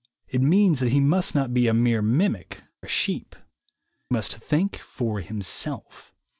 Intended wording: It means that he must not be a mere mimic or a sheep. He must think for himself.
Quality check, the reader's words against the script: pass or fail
fail